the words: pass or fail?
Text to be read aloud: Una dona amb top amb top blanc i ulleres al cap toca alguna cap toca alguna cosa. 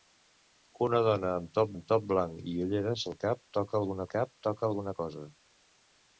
pass